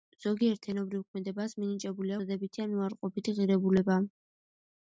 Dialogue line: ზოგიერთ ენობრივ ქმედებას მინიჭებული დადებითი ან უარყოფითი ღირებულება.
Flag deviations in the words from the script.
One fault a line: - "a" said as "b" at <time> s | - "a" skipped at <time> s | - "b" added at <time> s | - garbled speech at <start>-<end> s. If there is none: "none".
none